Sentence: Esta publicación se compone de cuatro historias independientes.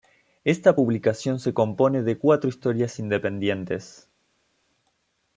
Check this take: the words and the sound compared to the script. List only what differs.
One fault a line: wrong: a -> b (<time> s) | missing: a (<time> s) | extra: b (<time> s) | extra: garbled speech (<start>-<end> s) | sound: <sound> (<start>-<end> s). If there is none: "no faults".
no faults